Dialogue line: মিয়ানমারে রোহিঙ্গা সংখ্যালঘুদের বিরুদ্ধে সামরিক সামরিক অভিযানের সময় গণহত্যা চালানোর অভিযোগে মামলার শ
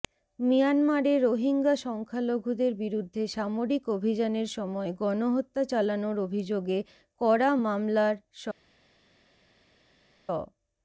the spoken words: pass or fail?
fail